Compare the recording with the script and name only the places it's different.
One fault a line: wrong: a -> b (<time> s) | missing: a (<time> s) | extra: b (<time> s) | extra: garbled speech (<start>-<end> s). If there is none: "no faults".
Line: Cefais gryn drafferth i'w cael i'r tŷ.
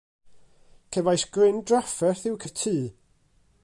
missing: cael (2.4 s)